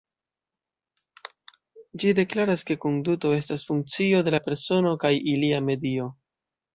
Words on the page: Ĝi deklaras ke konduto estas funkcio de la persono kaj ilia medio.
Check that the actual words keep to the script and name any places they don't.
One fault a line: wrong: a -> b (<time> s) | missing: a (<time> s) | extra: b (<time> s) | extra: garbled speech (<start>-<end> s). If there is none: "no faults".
no faults